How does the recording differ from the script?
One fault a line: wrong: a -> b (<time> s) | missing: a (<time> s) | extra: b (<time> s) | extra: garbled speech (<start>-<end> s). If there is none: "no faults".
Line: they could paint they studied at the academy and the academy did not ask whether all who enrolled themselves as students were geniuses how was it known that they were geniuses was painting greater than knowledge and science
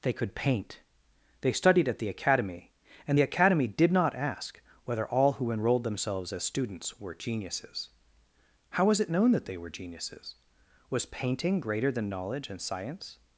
no faults